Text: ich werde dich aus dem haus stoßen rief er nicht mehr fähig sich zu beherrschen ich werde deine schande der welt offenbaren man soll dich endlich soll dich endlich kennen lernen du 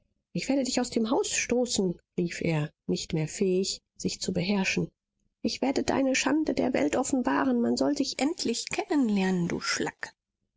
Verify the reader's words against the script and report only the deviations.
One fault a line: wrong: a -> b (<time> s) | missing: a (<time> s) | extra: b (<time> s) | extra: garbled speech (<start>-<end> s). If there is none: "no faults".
missing: soll dich endlich (8.7 s)